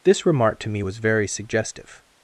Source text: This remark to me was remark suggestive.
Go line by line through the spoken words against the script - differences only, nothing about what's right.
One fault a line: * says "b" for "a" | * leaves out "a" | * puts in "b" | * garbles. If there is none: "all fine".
* says "very" for "remark"